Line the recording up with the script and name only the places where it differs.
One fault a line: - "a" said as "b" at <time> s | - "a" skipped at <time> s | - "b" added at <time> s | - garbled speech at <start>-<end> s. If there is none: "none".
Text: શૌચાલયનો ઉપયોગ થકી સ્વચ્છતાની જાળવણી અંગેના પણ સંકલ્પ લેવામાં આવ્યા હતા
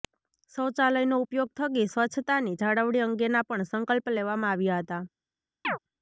none